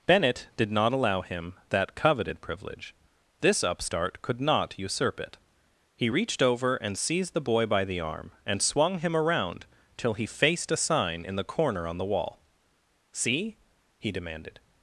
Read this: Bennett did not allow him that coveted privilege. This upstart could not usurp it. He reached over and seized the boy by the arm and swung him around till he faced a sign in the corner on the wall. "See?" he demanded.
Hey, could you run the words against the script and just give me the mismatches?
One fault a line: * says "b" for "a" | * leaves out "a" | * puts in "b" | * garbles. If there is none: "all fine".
all fine